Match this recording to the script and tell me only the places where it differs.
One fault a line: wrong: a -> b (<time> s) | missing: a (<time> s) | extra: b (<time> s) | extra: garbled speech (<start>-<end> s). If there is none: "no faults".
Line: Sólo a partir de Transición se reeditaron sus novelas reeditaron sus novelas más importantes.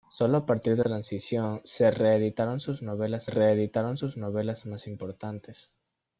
no faults